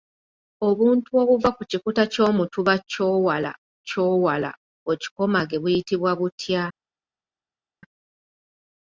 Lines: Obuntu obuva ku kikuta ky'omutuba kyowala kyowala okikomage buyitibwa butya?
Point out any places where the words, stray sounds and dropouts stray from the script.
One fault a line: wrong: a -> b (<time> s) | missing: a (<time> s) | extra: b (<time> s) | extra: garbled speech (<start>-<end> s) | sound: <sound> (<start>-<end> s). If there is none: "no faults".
no faults